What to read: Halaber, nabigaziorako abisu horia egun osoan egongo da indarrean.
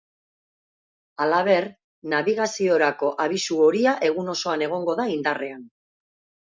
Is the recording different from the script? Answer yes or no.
no